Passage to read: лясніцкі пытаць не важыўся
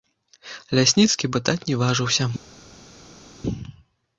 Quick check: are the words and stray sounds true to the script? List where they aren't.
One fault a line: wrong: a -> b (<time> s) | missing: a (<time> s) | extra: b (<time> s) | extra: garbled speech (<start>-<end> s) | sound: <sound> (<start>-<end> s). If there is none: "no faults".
no faults